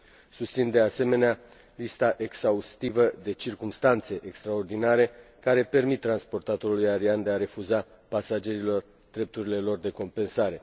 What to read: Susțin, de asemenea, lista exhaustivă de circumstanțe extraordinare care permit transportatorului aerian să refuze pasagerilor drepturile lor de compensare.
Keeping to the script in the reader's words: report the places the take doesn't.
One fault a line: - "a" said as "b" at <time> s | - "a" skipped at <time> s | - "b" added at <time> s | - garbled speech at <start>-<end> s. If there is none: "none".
none